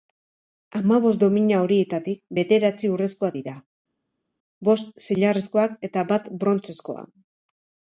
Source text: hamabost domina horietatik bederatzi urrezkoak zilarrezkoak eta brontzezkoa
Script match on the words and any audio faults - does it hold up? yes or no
no